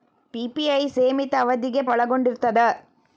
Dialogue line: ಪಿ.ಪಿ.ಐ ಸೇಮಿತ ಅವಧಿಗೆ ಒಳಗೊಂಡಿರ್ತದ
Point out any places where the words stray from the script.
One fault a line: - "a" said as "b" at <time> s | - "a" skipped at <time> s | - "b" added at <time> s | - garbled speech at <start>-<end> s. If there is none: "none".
none